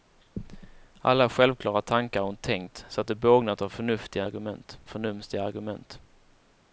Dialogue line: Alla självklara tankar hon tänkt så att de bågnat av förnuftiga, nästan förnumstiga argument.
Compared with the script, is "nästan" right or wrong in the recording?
wrong